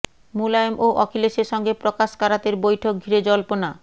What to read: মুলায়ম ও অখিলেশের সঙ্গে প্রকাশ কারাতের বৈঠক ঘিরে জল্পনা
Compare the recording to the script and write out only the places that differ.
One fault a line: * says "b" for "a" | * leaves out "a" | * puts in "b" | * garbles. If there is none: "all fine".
all fine